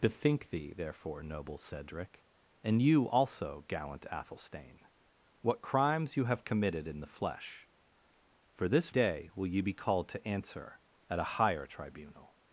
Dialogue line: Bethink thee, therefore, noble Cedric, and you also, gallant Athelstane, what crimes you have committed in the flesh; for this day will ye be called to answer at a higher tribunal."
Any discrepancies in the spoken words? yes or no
no